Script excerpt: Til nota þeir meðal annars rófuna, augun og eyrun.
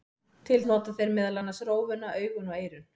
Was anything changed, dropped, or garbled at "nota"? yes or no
no